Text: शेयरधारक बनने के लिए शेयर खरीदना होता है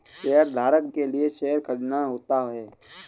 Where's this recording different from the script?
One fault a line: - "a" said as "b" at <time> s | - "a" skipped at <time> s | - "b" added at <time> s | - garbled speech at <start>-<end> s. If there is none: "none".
- "बनने" skipped at 0.8 s